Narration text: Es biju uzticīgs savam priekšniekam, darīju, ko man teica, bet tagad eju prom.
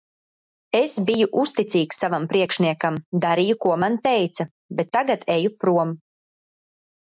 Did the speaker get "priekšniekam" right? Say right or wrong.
right